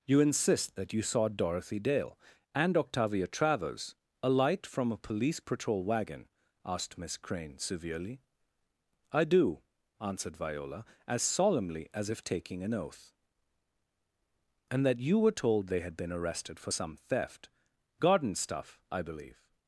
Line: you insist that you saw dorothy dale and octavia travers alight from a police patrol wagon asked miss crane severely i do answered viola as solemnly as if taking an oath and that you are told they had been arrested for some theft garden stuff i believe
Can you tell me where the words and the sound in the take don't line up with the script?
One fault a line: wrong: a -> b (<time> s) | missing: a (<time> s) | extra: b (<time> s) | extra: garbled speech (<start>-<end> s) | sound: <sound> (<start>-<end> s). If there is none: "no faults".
wrong: are -> were (15.2 s)